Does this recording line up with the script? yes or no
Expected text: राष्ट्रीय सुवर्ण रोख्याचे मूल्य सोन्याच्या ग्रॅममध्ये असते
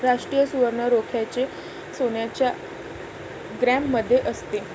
no